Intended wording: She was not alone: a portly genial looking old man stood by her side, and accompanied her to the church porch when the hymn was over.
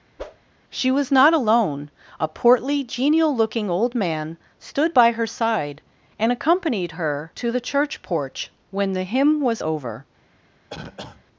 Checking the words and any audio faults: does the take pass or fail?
fail